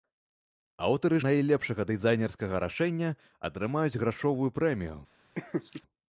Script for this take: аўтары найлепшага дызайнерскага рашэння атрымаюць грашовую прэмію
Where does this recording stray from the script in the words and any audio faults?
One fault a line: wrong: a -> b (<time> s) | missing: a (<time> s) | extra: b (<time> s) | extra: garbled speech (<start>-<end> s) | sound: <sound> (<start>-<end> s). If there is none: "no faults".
sound: laugh (5.4-5.8 s)